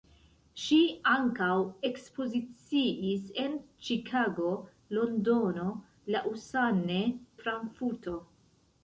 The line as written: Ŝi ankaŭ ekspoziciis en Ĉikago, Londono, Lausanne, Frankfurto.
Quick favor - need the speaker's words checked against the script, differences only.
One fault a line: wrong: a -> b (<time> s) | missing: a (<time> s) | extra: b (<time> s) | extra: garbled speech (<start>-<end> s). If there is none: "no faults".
no faults